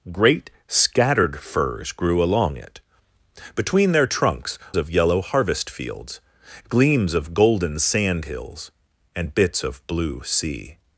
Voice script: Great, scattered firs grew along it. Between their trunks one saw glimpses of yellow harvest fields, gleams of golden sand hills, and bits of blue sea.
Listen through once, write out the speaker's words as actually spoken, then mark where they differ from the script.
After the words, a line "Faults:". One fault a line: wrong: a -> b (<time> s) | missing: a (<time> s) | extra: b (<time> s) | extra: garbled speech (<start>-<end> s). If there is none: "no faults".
Great, scattered firs grew along it. Between their trunks of yellow harvest fields, gleams of golden sand hills, and bits of blue sea.
Faults:
missing: one saw glimpses (4.6 s)